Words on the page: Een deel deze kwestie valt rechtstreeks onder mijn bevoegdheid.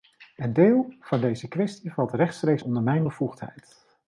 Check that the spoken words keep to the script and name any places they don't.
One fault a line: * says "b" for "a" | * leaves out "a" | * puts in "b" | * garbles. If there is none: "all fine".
* puts in "van"